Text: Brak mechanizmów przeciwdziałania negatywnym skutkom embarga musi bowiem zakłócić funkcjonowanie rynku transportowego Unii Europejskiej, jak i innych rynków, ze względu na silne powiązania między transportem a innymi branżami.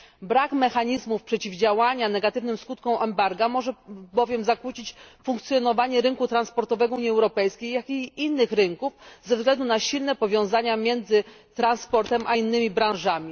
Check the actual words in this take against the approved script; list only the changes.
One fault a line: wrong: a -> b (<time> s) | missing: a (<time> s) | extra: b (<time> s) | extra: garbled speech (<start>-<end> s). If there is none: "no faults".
wrong: musi -> może (3.5 s)